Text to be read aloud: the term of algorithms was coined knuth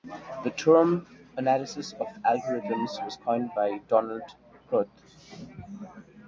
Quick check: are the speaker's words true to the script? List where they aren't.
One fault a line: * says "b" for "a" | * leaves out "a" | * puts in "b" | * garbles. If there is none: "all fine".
* puts in "analysis"
* puts in "by donald"